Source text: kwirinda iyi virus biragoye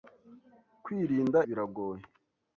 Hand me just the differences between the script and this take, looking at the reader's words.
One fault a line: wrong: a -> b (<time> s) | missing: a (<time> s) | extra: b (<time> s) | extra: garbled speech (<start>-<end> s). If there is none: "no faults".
missing: iyi virus (1.4 s)